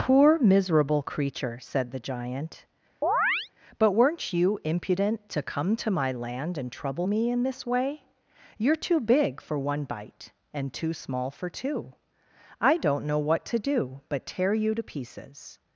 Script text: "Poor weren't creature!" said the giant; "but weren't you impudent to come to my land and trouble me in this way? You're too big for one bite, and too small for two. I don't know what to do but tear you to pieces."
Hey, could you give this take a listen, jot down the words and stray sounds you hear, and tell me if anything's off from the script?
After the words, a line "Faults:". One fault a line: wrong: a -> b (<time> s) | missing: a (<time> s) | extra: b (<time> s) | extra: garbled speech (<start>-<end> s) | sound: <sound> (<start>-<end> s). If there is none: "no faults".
"Poor miserable creature!" said the giant; "but weren't you impudent to come to my land and trouble me in this way? You're too big for one bite, and too small for two. I don't know what to do but tear you to pieces."
Faults:
wrong: weren't -> miserable (0.4 s)
sound: chirp (3.0-3.5 s)